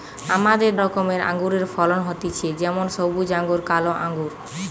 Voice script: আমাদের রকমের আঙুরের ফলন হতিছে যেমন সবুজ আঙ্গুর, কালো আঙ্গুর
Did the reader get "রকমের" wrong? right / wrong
right